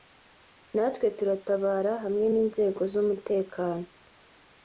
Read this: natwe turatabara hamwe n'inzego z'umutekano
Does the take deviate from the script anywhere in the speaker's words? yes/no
no